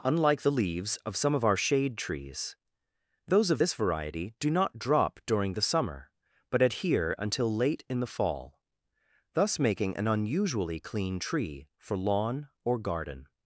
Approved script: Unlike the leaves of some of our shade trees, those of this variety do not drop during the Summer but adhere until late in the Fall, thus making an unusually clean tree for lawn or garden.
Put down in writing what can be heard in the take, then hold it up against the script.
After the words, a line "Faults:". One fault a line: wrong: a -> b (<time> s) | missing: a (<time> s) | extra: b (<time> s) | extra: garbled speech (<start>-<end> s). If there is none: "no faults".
Unlike the leaves of some of our shade trees, those of this variety do not drop during the Summer but adhere until late in the Fall, thus making an unusually clean tree for lawn or garden.
Faults:
no faults